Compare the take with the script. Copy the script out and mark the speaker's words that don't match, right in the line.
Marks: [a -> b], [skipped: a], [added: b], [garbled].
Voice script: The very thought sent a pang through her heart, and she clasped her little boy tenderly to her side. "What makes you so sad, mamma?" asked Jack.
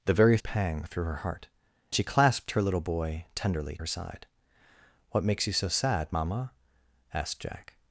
The very [skipped: thought sent] a pang through her heart, [skipped: and] she clasped her little boy tenderly [skipped: to] her side. "What makes you so sad, mamma?" asked Jack.